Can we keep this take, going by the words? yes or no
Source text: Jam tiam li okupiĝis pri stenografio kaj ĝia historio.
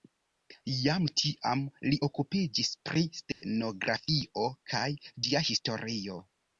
yes